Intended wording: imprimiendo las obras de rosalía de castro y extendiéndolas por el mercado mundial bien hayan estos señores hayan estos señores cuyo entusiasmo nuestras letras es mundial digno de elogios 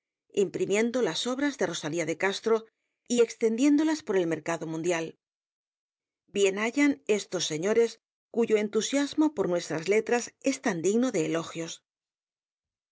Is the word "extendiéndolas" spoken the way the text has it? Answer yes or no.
yes